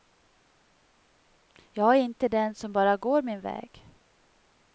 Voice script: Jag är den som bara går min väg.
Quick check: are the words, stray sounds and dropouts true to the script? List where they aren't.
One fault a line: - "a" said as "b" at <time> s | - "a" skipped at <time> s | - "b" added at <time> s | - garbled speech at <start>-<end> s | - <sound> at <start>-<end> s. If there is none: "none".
- "inte" added at 2.0 s